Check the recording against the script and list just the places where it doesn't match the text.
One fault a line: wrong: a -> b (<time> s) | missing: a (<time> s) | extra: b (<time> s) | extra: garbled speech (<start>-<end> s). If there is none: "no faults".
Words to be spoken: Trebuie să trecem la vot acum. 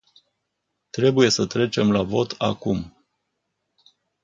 no faults